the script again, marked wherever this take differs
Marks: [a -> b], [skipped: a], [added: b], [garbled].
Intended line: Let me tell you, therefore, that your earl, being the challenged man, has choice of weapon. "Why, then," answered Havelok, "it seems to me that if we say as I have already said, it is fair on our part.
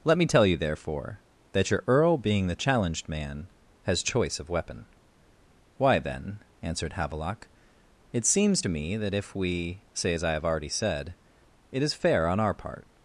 Let me tell you, therefore, that your earl, being the challenged man, has choice of weapon. "Why, then," answered Havelok, "it seems to me that if we say as I have already said, it is fair on our part.